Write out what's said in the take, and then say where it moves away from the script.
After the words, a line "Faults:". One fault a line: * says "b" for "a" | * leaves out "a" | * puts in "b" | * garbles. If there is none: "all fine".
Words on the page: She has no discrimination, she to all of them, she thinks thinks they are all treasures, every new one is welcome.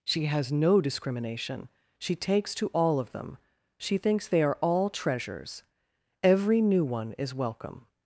She has no discrimination, she takes to all of them, she thinks they are all treasures, every new one is welcome.
Faults:
* puts in "takes"
* leaves out "thinks"